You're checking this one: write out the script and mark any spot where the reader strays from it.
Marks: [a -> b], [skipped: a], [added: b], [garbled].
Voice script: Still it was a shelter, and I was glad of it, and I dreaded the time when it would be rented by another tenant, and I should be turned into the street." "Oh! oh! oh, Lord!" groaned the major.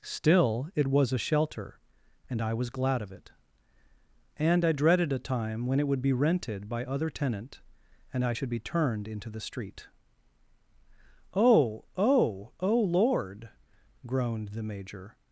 Still it was a shelter, and I was glad of it, and I dreaded [the -> a] time when it would be rented by [another -> other] tenant, and I should be turned into the street." "Oh! oh! oh, Lord!" groaned the major.